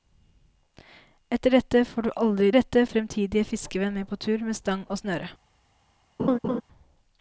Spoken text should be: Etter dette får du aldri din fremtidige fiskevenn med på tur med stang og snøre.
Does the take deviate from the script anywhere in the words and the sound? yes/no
yes